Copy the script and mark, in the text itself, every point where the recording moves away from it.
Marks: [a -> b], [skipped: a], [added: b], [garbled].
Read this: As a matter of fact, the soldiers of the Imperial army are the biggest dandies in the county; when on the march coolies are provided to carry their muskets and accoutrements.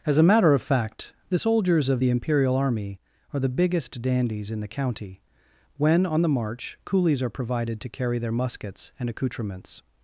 As a matter of fact, the soldiers of the Imperial army are the biggest dandies in the county; when on the march coolies are provided to carry their muskets and accoutrements.